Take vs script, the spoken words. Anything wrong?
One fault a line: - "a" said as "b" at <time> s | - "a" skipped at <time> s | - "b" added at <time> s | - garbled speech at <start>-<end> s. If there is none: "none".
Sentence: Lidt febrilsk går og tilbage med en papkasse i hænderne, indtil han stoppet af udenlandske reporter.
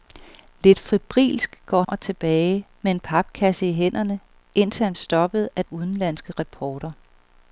none